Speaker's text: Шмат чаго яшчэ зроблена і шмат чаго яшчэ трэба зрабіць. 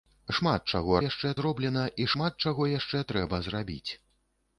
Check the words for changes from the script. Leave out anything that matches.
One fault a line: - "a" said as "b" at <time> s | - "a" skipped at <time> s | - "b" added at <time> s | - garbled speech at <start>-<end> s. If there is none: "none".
none